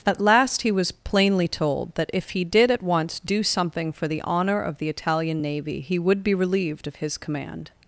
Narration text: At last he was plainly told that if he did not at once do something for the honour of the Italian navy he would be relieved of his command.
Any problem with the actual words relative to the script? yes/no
yes